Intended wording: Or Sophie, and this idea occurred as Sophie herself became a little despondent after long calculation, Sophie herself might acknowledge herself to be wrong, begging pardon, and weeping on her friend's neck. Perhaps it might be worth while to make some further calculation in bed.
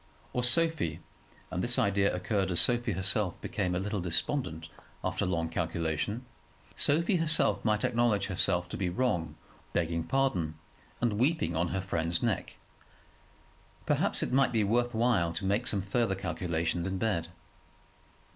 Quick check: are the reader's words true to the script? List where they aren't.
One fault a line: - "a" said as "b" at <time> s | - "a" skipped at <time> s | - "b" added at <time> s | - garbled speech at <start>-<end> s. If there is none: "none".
none